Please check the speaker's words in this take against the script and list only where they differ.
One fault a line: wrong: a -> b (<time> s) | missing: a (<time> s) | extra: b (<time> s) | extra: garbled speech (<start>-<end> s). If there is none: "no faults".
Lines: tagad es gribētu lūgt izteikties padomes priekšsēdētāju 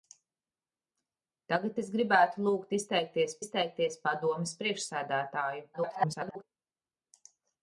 extra: izteikties (3.4 s)
extra: garbled speech (5.7-6.4 s)